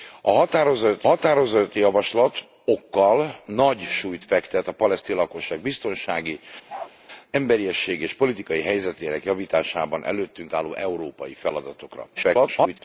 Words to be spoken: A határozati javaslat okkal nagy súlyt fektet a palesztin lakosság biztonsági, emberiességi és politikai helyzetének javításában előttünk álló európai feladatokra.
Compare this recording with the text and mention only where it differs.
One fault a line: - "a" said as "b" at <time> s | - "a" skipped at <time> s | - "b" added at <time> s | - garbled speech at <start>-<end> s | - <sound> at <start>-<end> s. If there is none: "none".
- "határozati" added at 1.0 s
- bark at 6.7-6.9 s
- garbled speech at 12.2-12.8 s